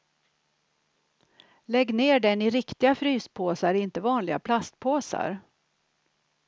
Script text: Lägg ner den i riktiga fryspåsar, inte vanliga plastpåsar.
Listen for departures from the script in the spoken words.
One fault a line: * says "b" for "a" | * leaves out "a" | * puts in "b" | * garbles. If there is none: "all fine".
all fine